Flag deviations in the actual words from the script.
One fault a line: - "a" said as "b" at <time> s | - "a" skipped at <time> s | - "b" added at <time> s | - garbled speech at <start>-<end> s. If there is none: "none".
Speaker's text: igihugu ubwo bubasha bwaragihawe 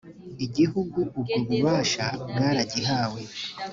none